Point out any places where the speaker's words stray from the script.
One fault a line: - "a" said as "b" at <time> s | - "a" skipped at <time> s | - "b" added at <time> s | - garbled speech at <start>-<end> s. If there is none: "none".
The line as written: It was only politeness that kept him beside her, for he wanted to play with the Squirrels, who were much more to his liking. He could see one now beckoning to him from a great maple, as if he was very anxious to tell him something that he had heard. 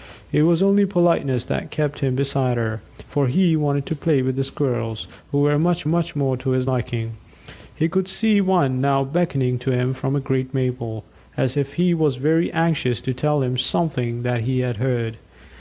- "much" added at 5.9 s